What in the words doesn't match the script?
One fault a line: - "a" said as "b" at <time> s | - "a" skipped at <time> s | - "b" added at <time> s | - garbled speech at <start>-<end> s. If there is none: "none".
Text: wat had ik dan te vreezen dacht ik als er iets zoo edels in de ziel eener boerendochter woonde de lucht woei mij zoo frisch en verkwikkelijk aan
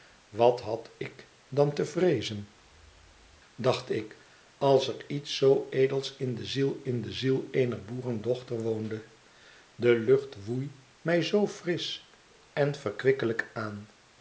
- "in de ziel" added at 6.8 s